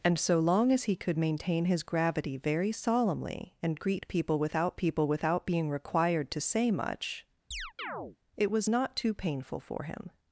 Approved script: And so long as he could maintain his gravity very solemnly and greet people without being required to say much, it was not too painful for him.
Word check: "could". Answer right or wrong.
right